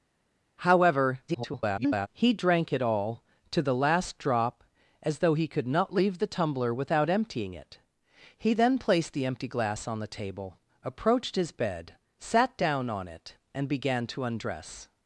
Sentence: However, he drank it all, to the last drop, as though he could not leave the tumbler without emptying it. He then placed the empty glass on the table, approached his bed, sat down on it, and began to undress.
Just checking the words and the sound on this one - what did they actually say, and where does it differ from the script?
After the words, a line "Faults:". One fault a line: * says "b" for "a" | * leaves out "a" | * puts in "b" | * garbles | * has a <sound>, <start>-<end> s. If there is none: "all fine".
However, [garbled] he drank it all, to the last drop, as though he could not leave the tumbler without emptying it. He then placed the empty glass on the table, approached his bed, sat down on it, and began to undress.
Faults:
* garbles